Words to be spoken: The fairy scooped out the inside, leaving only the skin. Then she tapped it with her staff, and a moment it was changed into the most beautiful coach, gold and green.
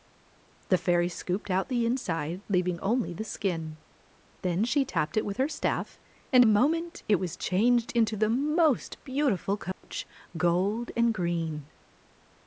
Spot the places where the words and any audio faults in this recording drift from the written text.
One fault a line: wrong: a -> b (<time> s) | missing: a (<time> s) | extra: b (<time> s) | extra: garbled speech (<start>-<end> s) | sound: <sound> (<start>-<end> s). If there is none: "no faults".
sound: dropout (9.7-9.8 s)